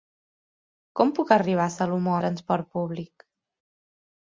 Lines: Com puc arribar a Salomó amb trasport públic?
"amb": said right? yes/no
no